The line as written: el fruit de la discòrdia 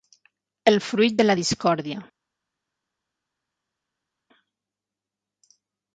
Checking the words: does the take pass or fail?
pass